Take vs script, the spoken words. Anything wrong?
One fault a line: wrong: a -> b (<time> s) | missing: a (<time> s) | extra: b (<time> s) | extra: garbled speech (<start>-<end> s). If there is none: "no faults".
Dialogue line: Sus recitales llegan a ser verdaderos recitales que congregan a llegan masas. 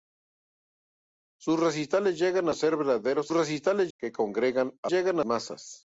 no faults